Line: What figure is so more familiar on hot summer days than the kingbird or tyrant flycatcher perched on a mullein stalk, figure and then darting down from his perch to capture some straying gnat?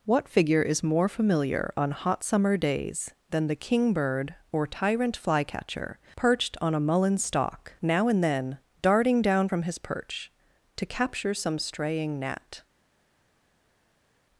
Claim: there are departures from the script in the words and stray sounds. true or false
true